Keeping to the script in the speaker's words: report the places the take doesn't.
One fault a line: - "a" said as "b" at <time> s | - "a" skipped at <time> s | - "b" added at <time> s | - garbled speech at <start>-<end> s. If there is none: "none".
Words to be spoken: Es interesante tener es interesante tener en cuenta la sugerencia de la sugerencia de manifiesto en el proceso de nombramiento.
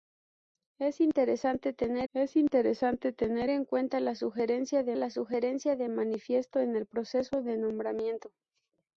none